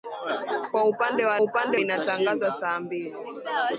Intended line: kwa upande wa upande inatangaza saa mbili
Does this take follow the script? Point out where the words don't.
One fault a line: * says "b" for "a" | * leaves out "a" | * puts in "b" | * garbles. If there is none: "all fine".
all fine